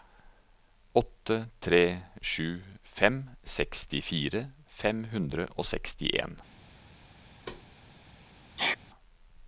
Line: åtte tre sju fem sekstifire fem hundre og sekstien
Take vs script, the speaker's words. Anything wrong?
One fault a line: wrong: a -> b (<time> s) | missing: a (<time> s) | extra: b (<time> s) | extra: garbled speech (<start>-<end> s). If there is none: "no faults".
no faults